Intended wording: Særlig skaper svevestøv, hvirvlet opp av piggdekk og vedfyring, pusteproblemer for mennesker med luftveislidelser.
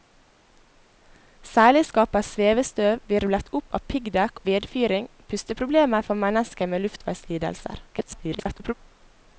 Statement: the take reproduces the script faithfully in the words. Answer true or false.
false